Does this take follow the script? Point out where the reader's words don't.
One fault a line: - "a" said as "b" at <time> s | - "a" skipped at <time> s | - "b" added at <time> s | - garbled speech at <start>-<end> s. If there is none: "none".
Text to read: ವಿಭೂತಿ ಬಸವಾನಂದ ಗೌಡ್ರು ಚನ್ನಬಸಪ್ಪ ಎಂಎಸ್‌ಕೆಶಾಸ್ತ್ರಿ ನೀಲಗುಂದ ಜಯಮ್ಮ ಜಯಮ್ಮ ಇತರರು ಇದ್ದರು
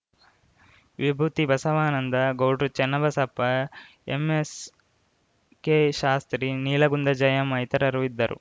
- "ಜಯಮ್ಮ" skipped at 7.6 s